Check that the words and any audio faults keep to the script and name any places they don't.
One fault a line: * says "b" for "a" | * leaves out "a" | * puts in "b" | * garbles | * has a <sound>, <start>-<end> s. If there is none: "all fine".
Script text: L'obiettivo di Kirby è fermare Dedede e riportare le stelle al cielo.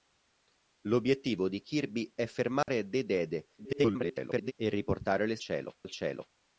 * has a dropout, 2.6-2.7 s
* garbles
* says "cielo" for "stelle"